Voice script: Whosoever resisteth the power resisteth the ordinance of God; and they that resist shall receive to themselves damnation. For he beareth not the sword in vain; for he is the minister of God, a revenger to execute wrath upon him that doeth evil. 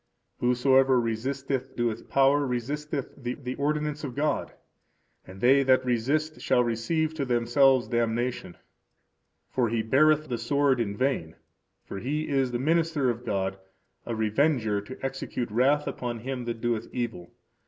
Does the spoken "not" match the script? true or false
false